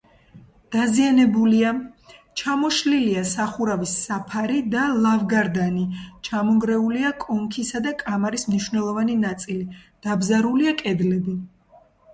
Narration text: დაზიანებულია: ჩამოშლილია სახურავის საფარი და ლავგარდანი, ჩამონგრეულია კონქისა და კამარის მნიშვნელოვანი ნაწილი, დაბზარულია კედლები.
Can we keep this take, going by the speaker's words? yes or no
yes